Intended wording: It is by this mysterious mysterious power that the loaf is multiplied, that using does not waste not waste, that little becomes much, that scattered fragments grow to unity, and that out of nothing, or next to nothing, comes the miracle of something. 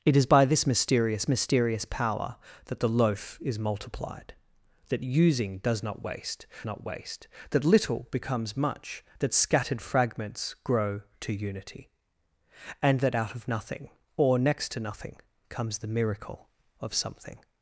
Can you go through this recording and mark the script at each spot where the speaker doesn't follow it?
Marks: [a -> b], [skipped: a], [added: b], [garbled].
It is by this mysterious mysterious power that the loaf is multiplied, that using does not waste not waste, that little becomes much, that scattered fragments grow to unity, and that out of nothing, or next to nothing, comes the miracle of something.